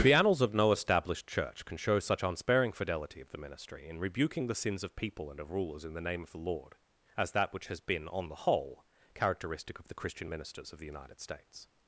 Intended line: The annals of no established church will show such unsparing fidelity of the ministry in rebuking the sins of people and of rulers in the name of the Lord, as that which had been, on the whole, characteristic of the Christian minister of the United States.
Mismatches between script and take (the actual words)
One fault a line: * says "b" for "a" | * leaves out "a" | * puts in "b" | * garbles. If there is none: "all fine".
* says "can" for "will"
* says "has" for "had"
* says "ministers" for "minister"